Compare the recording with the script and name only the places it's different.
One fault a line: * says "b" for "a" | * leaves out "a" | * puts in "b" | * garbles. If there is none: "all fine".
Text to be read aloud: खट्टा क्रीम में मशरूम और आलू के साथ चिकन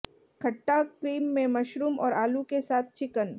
all fine